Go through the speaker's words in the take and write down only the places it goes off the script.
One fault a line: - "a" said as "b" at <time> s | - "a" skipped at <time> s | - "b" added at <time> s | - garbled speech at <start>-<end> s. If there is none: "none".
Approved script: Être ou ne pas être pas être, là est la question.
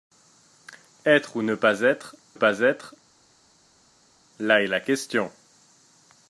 none